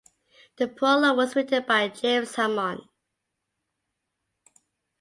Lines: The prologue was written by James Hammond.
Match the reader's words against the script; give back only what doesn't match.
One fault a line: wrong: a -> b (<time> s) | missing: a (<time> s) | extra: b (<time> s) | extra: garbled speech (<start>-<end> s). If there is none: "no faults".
no faults